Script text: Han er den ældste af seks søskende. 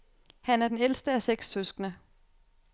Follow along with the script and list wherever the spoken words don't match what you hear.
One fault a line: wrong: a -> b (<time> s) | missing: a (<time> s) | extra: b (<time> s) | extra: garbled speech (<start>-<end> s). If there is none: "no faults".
no faults